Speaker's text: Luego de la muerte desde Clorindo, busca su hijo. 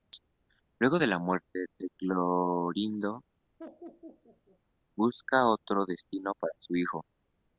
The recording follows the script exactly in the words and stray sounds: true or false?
false